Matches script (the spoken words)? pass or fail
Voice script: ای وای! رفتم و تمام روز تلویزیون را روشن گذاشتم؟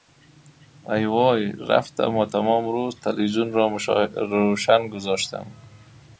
pass